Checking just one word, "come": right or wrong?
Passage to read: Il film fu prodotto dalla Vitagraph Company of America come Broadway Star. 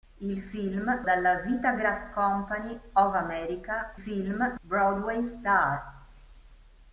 wrong